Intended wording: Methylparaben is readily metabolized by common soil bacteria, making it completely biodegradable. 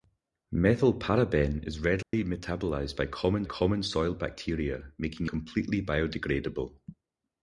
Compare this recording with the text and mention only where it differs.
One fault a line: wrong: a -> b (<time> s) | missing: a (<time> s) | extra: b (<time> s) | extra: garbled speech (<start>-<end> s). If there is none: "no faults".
extra: common (3.4 s)
missing: it (5.3 s)